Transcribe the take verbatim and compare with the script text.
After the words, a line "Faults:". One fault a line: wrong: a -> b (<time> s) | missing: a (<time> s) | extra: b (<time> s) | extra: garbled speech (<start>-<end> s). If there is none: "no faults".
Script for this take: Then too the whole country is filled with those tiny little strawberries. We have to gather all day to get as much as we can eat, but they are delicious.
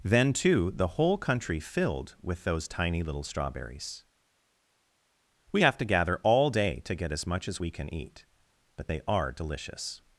Then too the whole country filled with those tiny little strawberries. We have to gather all day to get as much as we can eat, but they are delicious.
Faults:
missing: is (1.6 s)